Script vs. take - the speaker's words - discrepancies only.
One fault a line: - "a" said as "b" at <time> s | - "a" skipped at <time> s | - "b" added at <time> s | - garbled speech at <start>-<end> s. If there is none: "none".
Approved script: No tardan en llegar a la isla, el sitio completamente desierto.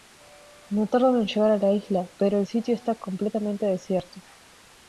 - "pero" added at 2.2 s
- "está" added at 2.7 s